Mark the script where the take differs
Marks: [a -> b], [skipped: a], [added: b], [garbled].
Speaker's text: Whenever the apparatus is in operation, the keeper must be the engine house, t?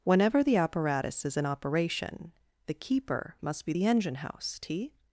Whenever the apparatus is in operation, the keeper must be the engine house, t?